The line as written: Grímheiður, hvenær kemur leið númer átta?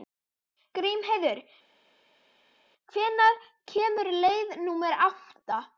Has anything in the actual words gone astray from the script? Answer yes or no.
no